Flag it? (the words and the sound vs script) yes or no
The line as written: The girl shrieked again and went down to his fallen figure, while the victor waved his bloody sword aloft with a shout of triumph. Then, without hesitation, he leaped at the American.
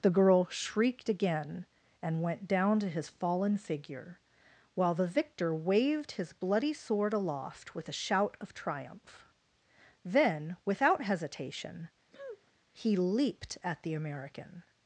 yes